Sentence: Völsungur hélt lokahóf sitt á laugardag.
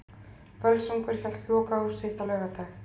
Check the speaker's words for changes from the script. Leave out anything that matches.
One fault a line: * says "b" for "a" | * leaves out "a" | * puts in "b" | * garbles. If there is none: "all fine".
all fine